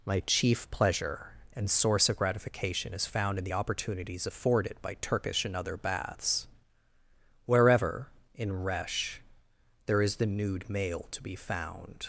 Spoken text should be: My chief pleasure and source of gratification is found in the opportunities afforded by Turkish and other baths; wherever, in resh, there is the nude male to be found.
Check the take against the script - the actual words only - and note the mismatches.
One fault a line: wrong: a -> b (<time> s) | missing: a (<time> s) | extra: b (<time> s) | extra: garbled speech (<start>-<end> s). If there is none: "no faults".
no faults